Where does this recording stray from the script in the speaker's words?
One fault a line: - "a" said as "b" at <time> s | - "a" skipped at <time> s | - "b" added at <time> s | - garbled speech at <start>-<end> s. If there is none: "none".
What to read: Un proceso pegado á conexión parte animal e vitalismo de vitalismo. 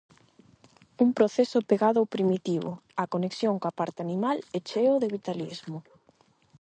- "ao primitivo" added at 2.0 s
- "coa" added at 3.6 s
- "vitalismo" said as "cheo" at 4.7 s